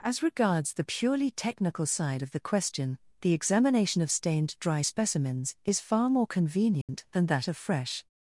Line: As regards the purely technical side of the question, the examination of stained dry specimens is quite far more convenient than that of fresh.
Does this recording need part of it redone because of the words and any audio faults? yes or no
yes